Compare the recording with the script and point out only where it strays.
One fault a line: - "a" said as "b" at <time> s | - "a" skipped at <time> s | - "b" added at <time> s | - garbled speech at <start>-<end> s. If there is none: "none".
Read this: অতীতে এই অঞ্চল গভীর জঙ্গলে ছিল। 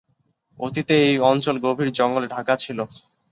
- "ঢাকা" added at 2.3 s